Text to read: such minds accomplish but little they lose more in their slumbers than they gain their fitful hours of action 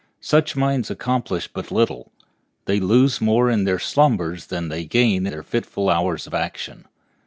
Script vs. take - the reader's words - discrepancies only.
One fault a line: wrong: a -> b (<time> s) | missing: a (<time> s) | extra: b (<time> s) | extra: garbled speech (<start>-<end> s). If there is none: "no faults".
no faults